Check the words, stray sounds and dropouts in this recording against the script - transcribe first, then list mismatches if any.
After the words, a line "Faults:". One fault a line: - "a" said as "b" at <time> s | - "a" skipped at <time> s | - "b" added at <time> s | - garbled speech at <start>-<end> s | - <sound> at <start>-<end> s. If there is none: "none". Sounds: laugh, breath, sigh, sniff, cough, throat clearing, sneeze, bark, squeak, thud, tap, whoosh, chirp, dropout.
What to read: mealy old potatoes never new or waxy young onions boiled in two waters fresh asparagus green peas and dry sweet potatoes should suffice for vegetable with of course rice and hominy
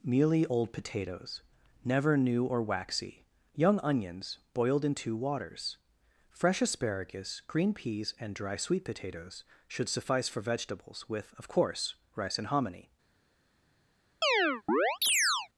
mealy old potatoes never new or waxy young onions boiled in two waters fresh asparagus green peas and dry sweet potatoes should suffice for vegetables with of course rice and hominy
Faults:
- "vegetable" said as "vegetables" at 10.4 s
- chirp at 14.2-15.5 s